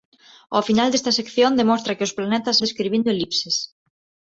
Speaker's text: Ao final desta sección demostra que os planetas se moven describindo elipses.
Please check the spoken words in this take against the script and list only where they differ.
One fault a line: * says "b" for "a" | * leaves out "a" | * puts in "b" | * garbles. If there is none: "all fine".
* leaves out "se moven"